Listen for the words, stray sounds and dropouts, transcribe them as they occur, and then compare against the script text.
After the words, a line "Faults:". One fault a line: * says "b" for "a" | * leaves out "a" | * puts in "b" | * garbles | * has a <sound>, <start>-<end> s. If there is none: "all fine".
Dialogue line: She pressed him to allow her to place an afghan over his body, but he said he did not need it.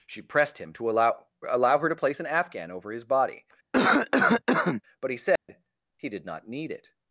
She pressed him to allow allow her to place an afghan over his body, but he said he did not need it.
Faults:
* puts in "allow"
* has a cough, 3.7-4.8 s
* has a dropout, 5.4-5.5 s